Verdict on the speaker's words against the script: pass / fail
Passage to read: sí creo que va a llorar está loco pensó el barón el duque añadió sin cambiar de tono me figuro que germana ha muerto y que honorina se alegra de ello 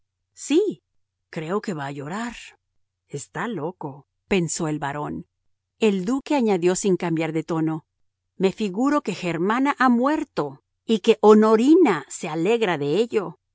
pass